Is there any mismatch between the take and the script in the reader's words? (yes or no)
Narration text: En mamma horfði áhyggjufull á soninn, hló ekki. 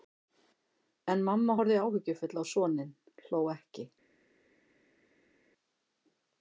no